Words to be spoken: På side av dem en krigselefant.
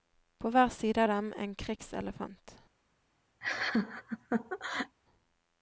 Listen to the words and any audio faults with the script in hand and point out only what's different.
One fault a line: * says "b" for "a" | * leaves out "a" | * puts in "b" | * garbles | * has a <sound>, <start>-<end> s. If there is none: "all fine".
* puts in "hver"
* has a laugh, 3.4-5.0 s